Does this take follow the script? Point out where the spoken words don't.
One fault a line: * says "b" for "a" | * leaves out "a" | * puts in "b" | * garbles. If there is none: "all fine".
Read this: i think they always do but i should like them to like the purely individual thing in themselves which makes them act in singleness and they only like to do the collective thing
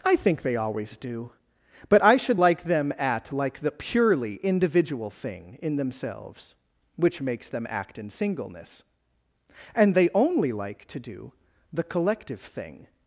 * says "at" for "to"